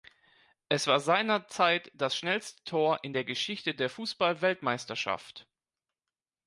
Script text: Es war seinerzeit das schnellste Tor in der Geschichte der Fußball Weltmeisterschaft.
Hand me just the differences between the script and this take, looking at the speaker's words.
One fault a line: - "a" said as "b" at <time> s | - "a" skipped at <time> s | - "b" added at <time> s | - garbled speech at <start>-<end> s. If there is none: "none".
none